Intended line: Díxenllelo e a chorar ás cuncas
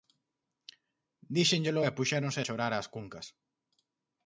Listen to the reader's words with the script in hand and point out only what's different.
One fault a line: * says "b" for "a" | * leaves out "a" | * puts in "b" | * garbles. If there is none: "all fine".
* puts in "puxéronse"